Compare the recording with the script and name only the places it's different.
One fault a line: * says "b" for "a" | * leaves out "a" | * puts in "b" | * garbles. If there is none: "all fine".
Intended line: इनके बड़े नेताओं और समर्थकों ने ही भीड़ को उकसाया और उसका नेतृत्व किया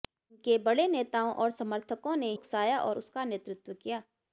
* leaves out "ही भीड़ को"